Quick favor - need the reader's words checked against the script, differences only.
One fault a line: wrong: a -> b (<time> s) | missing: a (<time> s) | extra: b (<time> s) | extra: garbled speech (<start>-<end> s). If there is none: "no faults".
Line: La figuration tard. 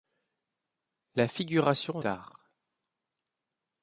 no faults